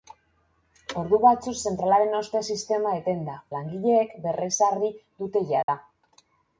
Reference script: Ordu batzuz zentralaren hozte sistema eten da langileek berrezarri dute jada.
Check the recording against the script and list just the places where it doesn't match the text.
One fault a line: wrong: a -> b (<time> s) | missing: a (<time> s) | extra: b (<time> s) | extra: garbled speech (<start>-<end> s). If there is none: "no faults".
no faults